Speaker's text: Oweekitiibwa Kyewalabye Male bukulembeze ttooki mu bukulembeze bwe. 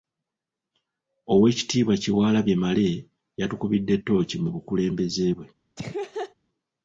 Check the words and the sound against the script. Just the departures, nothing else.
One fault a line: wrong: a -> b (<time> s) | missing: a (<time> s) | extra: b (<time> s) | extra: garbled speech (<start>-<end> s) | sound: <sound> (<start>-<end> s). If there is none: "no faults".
wrong: bukulembeze -> yatukubidde (3.4 s)
sound: laugh (5.8-6.3 s)